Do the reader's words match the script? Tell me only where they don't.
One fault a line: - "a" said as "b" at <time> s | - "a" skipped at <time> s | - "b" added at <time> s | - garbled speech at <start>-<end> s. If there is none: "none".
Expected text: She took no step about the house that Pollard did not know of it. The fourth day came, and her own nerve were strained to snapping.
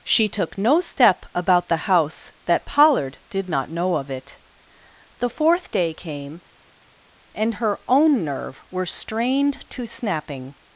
none